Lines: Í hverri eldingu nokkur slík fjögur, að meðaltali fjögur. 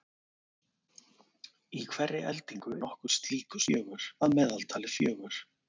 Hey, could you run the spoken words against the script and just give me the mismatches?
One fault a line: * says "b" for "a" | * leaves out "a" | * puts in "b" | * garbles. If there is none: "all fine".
all fine